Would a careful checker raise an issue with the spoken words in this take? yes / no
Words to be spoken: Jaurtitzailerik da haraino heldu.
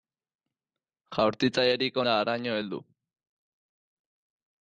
no